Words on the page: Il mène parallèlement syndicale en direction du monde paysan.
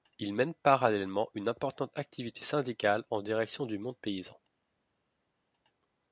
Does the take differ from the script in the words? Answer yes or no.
yes